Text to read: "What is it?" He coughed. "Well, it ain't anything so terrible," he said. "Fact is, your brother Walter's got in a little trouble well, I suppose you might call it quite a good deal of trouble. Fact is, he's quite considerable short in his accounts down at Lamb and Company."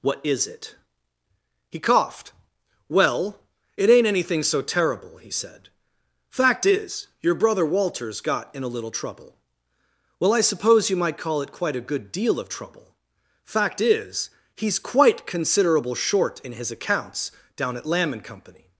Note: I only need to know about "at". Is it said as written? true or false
true